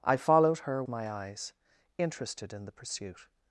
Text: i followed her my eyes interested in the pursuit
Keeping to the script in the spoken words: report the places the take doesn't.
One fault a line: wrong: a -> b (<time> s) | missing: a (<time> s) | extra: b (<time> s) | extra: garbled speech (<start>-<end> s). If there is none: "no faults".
no faults